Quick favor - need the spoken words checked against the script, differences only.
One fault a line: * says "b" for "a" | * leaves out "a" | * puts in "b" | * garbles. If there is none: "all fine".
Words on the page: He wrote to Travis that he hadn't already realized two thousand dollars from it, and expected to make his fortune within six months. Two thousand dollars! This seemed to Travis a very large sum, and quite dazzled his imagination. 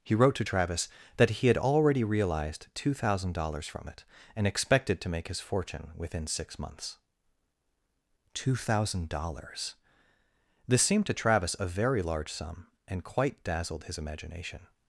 * says "had" for "hadn't"